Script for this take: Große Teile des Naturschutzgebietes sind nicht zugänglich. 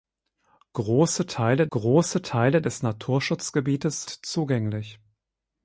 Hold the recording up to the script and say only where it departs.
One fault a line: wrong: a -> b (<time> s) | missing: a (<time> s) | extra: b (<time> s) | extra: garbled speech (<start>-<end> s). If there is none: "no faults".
extra: große Teile (1.7 s)
missing: sind nicht (4.0 s)